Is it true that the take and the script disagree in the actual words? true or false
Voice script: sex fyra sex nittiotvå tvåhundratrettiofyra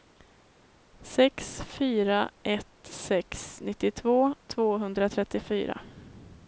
true